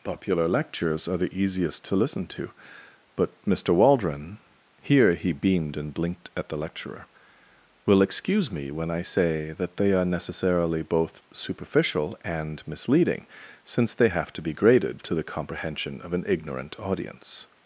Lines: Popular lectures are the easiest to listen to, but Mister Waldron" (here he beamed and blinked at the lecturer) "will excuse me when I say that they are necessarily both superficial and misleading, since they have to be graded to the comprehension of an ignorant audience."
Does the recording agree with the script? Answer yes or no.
yes